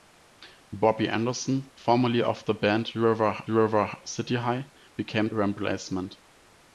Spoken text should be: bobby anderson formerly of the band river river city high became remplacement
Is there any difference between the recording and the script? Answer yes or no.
no